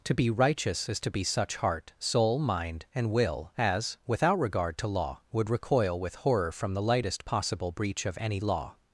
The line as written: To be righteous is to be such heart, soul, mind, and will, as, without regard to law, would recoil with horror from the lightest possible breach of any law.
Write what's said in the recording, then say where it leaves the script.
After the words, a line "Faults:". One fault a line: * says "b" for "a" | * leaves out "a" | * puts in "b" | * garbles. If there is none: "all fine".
To be righteous is to be such heart, soul, mind, and will, as, without regard to law, would recoil with horror from the lightest possible breach of any law.
Faults:
all fine